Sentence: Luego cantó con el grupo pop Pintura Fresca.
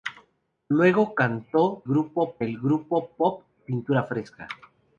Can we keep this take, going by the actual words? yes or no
no